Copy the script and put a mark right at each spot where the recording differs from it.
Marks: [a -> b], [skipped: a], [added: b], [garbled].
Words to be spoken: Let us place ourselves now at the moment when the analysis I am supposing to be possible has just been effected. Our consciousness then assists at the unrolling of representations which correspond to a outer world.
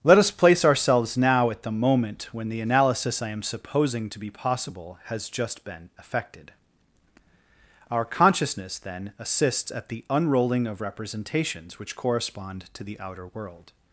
Let us place ourselves now at the moment when the analysis I am supposing to be possible has just been effected. Our consciousness then assists at the unrolling of representations which correspond to [a -> the] outer world.